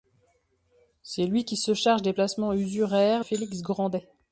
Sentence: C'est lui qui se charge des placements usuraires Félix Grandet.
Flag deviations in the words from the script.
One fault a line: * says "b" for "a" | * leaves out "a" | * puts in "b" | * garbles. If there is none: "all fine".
all fine